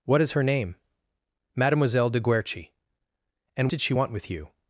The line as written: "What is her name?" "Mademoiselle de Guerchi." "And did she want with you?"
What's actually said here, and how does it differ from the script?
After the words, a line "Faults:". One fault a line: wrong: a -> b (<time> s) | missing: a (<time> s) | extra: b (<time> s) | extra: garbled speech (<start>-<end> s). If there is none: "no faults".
"What is her name?" "Mademoiselle de Guerchi." "And did she want with you?"
Faults:
no faults